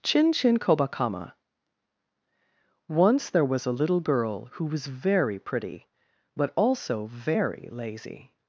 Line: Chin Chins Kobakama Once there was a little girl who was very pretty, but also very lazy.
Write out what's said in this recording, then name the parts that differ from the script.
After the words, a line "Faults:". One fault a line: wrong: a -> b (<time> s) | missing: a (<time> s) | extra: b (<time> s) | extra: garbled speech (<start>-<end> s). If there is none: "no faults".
Chin Chin Kobakama Once there was a little girl who was very pretty, but also very lazy.
Faults:
wrong: Chins -> Chin (0.3 s)